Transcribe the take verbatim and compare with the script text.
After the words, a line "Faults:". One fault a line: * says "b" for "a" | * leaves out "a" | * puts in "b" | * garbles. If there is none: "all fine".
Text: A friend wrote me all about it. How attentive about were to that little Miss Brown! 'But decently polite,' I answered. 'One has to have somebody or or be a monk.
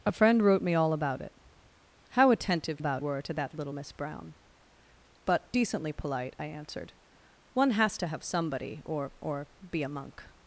A friend wrote me all about it. How attentive about were to that little Miss Brown! 'But decently polite,' I answered. 'One has to have somebody or or be a monk.
Faults:
all fine